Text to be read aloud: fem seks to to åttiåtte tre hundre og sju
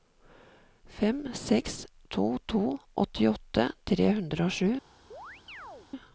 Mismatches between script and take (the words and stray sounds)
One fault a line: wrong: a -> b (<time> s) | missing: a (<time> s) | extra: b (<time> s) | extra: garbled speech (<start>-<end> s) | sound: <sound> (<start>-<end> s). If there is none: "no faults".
sound: chirp (5.1-5.9 s)